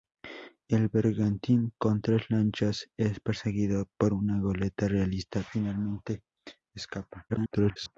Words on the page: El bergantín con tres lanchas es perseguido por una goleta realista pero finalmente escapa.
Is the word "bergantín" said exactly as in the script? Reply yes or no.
yes